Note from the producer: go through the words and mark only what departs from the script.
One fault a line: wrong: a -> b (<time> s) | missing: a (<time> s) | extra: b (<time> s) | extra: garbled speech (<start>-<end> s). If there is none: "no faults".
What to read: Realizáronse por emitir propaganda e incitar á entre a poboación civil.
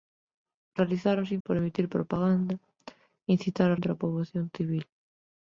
no faults